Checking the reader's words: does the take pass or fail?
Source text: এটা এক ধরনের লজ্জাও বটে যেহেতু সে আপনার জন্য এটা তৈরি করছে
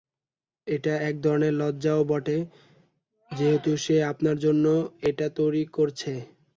pass